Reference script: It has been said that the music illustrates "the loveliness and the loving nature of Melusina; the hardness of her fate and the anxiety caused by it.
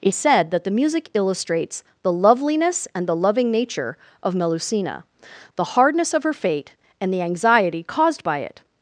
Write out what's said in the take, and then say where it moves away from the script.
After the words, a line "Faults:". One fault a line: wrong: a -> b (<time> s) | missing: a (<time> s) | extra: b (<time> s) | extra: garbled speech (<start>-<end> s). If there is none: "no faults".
It said that the music illustrates "the loveliness and the loving nature of Melusina; the hardness of her fate and the anxiety caused by it.
Faults:
missing: has been (0.1 s)